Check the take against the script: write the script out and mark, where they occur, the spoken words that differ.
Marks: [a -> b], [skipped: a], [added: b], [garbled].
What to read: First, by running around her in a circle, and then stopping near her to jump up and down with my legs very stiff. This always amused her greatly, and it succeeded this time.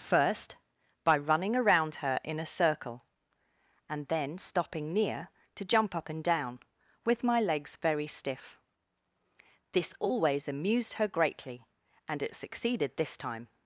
First, by running around her in a circle, and then stopping near [skipped: her] to jump up and down with my legs very stiff. This always amused her greatly, and it succeeded this time.